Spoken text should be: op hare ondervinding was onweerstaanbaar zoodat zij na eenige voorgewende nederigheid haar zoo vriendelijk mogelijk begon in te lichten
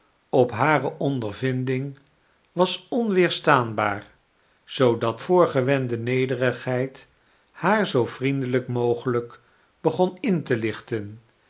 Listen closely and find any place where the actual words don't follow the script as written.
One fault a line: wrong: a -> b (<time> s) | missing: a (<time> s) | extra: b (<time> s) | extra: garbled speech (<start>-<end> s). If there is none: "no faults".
missing: zij na eenige (5.2 s)